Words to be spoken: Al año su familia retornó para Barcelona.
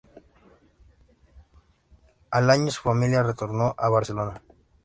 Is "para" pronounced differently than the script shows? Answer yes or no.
yes